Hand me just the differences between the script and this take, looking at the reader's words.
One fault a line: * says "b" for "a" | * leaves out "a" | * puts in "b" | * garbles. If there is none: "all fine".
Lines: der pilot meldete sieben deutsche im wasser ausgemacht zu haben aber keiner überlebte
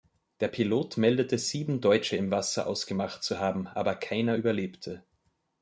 all fine